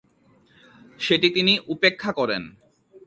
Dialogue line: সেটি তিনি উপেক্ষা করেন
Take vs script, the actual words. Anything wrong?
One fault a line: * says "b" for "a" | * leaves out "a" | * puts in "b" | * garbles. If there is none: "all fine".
all fine